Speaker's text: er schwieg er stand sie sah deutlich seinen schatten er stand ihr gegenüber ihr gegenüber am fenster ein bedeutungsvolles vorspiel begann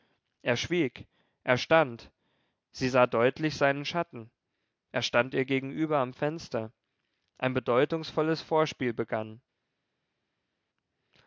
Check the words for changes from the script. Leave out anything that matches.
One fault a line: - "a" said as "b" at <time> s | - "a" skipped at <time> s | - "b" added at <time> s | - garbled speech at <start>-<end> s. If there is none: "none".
- "ihr gegenüber" skipped at 6.0 s